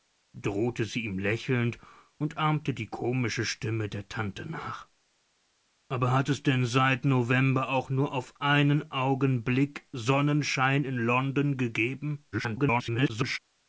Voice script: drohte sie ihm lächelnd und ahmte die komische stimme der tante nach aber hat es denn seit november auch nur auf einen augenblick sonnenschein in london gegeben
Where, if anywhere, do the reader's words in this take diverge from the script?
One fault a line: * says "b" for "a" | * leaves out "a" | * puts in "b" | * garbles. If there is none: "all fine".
* garbles